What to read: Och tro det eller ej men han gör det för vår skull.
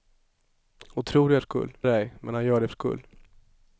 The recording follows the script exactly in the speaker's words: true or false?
false